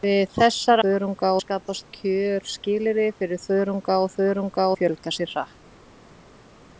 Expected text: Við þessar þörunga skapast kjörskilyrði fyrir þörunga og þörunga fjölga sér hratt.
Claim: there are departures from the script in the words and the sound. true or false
false